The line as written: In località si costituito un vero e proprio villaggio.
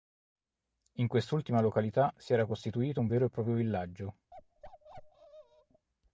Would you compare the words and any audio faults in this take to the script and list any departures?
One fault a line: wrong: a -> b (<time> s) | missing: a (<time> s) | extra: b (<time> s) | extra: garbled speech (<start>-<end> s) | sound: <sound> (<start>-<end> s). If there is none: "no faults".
extra: quest'ultima (1.1 s)
extra: era (2.3 s)
sound: bark (4.3-5.9 s)